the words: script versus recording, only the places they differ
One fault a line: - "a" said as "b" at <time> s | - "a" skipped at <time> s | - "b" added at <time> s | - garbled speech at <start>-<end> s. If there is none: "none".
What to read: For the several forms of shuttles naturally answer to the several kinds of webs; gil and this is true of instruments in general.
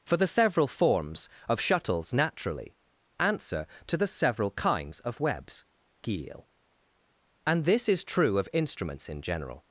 none